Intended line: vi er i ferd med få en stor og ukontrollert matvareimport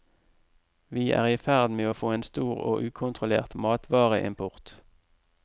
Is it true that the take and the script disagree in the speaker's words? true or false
true